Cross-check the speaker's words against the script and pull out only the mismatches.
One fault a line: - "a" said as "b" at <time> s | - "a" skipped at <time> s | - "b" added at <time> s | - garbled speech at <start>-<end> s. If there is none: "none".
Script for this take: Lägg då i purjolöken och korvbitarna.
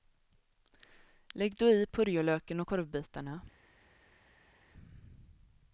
none